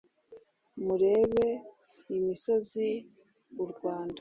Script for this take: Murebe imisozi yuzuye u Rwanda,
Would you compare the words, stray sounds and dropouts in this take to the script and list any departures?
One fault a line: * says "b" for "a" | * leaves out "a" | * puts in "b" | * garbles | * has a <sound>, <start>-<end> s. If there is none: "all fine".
* leaves out "yuzuye"